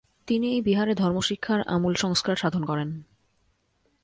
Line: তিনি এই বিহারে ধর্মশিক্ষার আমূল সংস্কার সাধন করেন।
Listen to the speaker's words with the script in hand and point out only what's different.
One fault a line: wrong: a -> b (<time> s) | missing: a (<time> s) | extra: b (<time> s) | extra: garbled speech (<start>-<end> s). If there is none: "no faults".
no faults